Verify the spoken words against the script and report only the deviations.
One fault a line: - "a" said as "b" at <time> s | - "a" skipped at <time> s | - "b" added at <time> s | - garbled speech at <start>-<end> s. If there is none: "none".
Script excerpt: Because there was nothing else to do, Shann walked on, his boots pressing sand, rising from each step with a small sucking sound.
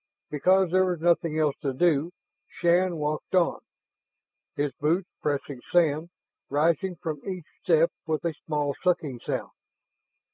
none